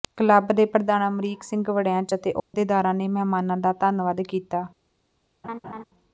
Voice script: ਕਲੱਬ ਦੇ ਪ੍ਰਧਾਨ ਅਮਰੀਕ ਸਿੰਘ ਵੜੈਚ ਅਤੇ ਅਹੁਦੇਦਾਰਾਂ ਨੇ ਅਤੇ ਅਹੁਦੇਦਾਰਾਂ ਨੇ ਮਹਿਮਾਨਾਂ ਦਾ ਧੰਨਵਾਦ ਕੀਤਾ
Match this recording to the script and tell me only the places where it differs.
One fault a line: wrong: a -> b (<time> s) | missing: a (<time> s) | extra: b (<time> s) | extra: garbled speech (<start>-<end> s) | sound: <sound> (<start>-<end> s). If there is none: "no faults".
sound: dropout (2.4-2.5 s)
missing: ਅਤੇ ਅਹੁਦੇਦਾਰਾਂ ਨੇ (3.1 s)
sound: laugh (5.4-5.8 s)